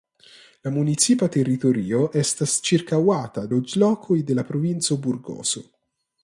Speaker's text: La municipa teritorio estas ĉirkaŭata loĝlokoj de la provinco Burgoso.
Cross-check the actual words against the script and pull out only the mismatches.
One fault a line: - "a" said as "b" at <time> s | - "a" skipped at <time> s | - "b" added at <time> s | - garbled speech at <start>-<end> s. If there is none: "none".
none